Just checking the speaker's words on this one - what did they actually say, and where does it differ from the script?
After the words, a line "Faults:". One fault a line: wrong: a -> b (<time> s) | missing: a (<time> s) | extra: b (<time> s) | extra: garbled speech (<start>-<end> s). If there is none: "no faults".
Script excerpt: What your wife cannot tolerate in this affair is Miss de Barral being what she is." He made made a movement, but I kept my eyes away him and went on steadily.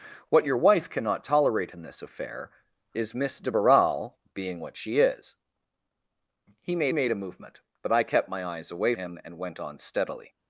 What your wife cannot tolerate in this affair is Miss de Barral being what she is." He made made a movement, but I kept my eyes away him and went on steadily.
Faults:
no faults